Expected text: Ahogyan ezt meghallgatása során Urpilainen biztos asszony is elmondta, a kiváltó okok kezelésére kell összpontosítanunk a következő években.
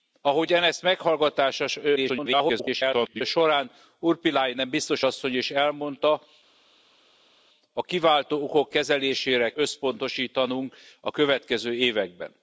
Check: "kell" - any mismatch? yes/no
yes